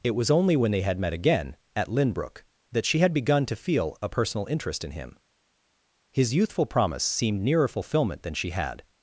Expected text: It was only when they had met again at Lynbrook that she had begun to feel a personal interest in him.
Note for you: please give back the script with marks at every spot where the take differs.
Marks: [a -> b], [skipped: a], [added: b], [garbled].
It was only when they had met again at Lynbrook that she had begun to feel a personal interest in him. [added: His youthful promise seemed nearer fulfillment than she had]